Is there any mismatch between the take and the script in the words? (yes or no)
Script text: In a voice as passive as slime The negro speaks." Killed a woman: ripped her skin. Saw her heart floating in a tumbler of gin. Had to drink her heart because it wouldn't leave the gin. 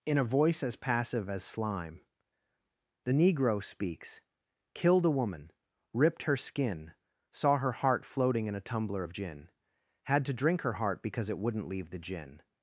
no